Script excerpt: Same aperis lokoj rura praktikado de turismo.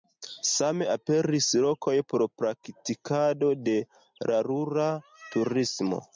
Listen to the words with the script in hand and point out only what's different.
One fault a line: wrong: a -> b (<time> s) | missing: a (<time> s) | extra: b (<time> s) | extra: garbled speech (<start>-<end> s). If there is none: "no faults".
wrong: rura -> por (2.1 s)
extra: la rura (4.3 s)